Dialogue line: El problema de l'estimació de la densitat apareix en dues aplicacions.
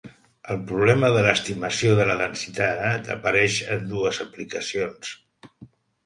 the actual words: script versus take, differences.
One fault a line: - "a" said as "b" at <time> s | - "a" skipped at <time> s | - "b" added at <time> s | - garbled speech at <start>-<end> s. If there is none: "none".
none